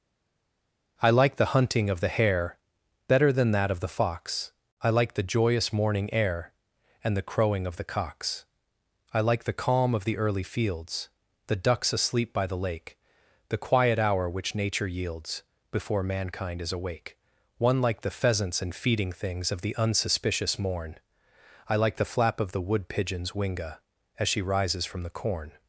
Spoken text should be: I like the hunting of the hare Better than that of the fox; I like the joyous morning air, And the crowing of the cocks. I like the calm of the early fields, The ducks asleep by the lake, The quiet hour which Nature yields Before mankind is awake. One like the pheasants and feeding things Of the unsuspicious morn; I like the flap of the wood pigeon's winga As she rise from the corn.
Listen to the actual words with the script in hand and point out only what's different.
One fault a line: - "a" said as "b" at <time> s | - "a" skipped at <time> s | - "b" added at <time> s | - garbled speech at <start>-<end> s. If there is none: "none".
- "rise" said as "rises" at 24.4 s